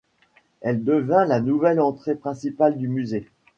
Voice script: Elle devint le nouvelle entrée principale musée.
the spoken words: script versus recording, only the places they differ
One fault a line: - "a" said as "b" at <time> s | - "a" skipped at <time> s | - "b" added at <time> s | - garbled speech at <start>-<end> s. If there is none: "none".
- "le" said as "la" at 1.2 s
- "du" added at 2.8 s